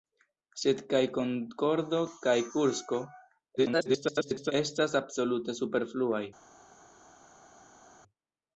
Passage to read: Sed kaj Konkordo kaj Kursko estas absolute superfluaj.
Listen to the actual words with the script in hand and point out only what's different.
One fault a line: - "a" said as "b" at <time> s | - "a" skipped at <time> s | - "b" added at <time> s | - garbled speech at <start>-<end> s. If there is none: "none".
- garbled speech at 3.6-4.5 s